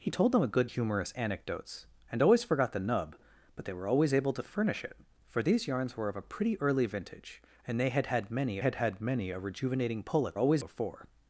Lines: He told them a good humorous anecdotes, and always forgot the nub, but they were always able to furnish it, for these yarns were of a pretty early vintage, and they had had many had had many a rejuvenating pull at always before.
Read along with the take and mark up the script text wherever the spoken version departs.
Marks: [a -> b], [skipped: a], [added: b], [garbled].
He told them a good humorous anecdotes, and always forgot the nub, but they were always able to furnish it, for these yarns were of a pretty early vintage, and they had had many had had many a rejuvenating pull at always before.